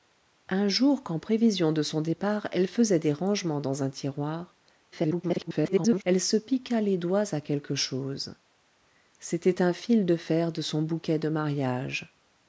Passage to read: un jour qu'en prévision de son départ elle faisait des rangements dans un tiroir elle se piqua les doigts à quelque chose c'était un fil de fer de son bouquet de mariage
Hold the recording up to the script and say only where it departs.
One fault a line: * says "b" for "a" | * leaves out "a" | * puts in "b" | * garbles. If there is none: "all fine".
* garbles